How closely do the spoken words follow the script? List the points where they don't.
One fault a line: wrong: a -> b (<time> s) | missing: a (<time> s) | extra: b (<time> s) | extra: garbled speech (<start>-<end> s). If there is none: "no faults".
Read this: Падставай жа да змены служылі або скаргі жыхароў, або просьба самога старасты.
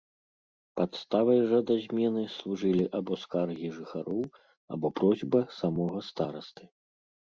no faults